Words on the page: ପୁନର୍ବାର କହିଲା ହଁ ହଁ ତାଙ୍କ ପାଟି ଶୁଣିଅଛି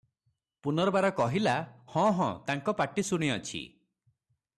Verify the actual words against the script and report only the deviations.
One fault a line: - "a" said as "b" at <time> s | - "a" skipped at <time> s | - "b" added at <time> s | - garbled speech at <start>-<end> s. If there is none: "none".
none